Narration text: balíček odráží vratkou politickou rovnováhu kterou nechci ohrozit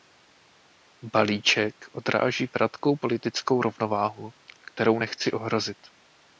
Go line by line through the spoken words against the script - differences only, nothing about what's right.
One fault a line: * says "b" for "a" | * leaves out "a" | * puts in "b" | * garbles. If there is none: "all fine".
all fine